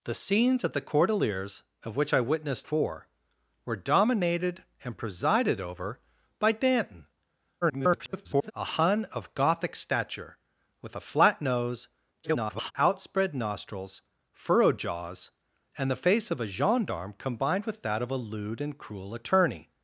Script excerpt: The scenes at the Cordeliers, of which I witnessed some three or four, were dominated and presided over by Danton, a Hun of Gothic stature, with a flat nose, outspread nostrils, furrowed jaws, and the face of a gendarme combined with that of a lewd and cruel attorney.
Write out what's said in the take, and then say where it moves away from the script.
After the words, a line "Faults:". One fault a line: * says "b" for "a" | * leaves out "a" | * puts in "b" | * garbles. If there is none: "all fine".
The scenes at the Cordeliers, of which I witnessed four, were dominated and presided over by Danton, [garbled] a Hun of Gothic stature, with a flat nose, [garbled] outspread nostrils, furrowed jaws, and the face of a gendarme combined with that of a lewd and cruel attorney.
Faults:
* leaves out "some three or"
* garbles
* garbles